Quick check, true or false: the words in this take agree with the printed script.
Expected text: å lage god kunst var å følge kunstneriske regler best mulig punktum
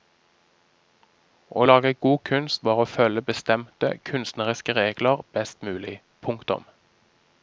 false